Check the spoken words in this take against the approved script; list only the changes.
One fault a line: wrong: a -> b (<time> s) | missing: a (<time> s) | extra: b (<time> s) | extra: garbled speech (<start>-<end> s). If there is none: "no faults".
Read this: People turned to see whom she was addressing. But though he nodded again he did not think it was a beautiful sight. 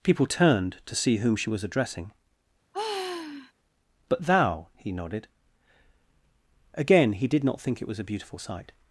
wrong: though -> thou (4.3 s)